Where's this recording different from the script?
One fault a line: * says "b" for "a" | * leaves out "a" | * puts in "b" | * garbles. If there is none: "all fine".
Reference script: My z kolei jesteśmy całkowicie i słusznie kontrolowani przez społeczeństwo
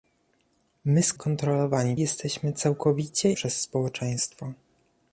* says "kontrolowani" for "kolei"
* leaves out "i słusznie kontrolowani"